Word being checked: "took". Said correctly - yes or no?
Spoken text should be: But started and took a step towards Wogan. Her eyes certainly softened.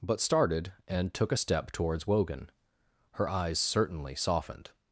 yes